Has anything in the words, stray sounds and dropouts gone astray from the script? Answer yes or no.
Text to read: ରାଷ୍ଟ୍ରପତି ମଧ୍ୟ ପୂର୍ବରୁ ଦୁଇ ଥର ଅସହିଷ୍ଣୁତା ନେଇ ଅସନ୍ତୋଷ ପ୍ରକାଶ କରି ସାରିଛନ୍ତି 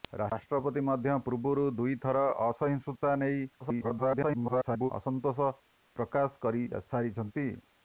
yes